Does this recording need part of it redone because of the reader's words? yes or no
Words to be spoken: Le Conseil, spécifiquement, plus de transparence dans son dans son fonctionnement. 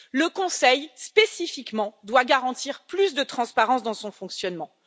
yes